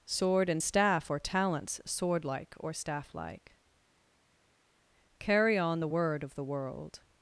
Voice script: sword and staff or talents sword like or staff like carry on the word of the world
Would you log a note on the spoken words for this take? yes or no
no